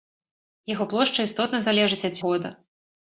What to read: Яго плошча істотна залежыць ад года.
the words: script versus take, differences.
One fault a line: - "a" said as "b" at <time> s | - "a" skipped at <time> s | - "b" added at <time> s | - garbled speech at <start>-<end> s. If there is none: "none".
none